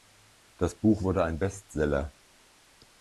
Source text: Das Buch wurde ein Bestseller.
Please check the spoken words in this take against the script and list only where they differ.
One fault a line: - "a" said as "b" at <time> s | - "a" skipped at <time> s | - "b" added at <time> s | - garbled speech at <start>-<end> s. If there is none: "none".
none